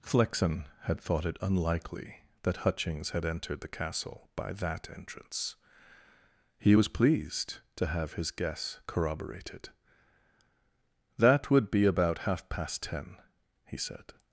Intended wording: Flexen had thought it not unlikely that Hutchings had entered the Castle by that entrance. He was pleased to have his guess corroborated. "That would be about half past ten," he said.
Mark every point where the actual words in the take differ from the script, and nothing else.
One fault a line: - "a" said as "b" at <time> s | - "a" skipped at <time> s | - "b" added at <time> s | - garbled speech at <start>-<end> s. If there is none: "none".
- "not" skipped at 1.4 s